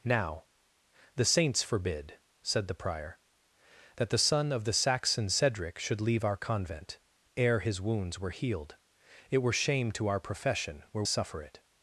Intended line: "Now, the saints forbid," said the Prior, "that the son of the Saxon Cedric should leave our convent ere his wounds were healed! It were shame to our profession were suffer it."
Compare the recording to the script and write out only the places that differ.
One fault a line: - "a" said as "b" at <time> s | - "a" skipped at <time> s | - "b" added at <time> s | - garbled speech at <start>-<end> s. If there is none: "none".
none